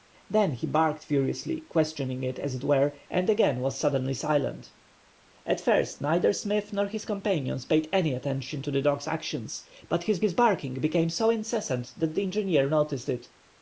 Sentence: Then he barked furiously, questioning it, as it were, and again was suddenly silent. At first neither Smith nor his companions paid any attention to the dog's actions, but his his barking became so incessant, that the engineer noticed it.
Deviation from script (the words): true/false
false